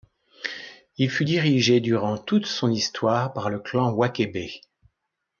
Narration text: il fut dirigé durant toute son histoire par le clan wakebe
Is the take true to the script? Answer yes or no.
yes